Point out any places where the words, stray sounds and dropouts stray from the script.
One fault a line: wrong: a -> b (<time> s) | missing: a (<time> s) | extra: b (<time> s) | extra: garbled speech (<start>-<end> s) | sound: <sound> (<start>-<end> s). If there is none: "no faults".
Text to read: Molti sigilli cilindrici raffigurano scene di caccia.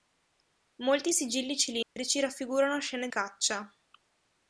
sound: dropout (1.8-2.0 s)
missing: di (3.1 s)